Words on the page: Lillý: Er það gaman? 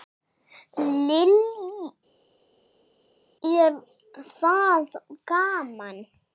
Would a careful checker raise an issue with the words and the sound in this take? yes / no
no